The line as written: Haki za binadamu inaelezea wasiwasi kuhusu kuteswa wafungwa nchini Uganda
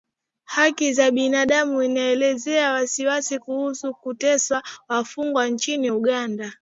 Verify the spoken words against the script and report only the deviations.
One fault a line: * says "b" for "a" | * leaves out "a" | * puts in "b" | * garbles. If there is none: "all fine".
all fine